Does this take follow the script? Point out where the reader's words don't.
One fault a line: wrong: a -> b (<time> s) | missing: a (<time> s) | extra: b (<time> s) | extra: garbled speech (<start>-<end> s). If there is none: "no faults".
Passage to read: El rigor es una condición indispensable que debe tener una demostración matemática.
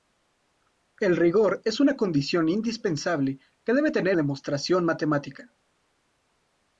missing: una (4.2 s)